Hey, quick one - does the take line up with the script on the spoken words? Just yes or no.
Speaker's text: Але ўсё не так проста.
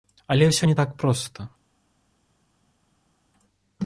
yes